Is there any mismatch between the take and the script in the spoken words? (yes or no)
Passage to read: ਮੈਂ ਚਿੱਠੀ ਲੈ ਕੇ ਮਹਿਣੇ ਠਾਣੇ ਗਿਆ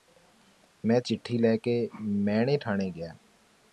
no